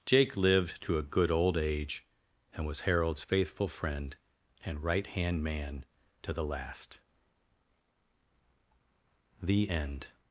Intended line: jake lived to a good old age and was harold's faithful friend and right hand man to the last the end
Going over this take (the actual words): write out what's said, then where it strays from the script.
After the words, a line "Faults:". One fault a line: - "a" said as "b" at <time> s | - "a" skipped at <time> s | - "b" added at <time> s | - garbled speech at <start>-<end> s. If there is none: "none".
jake lived to a good old age and was harold's faithful friend and right hand man to the last the end
Faults:
none